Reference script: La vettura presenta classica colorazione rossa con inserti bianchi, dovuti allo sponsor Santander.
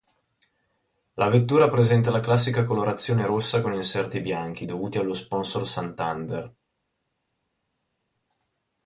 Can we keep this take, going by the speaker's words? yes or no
no